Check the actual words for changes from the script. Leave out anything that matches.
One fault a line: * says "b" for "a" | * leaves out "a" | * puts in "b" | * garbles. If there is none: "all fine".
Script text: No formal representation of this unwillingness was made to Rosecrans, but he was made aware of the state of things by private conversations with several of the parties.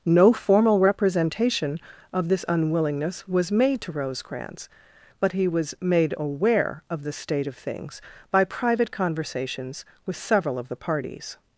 all fine